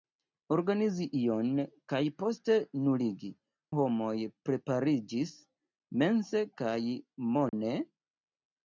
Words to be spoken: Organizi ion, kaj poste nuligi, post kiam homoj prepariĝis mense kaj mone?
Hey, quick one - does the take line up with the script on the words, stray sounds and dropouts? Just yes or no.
no